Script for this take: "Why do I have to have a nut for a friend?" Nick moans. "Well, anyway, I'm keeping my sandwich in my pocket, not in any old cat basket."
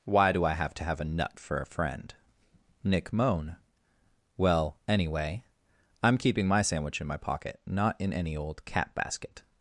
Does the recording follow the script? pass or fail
fail